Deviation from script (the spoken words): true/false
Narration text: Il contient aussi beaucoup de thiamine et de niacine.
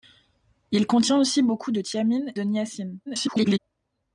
true